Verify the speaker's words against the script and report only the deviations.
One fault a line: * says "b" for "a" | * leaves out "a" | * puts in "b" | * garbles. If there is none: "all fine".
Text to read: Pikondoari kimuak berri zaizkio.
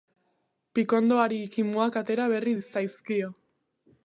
* puts in "atera"